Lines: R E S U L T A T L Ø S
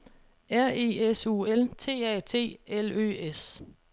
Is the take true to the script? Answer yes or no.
yes